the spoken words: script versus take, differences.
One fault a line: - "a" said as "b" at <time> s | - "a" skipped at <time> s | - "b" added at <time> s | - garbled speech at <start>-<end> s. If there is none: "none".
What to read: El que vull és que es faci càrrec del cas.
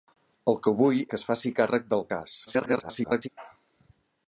- "és" skipped at 1.0 s
- garbled speech at 2.5-3.3 s